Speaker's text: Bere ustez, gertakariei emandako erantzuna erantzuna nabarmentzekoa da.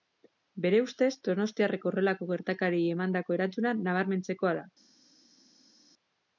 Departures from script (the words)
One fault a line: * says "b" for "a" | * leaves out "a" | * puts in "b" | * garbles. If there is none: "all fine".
* puts in "donostiarrek horrelako"
* leaves out "erantzuna"